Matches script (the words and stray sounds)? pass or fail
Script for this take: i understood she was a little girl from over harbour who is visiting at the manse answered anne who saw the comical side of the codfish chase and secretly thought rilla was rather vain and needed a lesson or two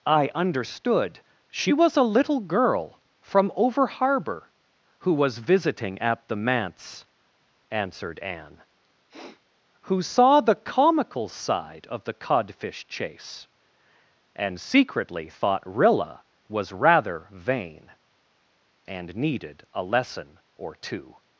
fail